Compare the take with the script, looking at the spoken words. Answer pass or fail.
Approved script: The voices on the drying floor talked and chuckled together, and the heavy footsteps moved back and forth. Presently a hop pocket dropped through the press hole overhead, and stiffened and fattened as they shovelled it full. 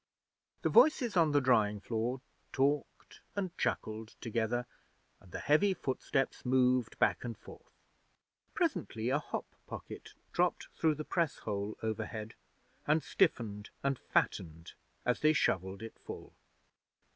pass